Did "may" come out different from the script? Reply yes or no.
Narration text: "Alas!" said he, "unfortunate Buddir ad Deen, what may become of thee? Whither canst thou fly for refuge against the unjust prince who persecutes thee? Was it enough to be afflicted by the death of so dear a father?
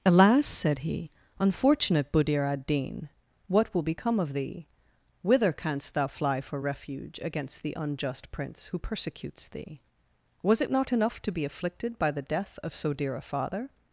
yes